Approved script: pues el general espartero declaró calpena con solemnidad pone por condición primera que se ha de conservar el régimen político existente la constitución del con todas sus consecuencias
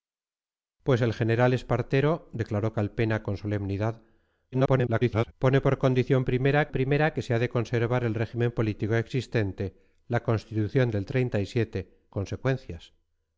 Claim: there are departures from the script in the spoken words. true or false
true